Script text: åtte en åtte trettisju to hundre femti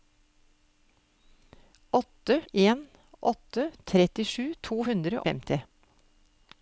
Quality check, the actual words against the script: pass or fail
pass